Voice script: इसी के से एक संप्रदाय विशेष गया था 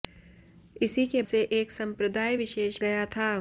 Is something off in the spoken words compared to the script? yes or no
no